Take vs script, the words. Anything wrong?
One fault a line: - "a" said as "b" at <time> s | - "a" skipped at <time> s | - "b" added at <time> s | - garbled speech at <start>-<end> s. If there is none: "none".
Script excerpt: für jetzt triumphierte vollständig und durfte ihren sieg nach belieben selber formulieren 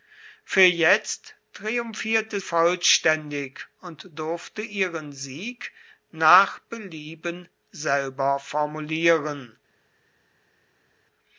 none